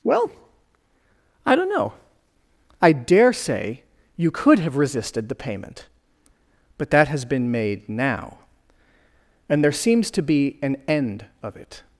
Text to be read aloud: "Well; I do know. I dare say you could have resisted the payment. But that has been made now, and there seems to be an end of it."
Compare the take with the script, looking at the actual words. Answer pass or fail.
fail